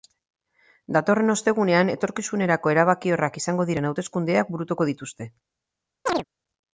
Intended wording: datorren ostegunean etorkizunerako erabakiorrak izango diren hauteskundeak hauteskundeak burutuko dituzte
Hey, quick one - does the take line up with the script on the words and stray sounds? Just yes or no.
no